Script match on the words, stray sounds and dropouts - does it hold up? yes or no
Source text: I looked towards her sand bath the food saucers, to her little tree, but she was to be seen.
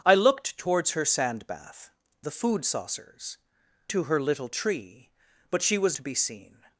yes